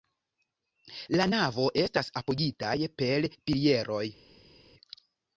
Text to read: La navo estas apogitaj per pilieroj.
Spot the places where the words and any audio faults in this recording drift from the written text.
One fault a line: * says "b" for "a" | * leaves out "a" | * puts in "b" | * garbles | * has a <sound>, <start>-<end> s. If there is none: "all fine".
all fine